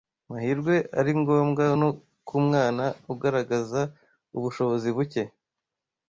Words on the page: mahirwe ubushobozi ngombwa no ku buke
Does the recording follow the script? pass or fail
fail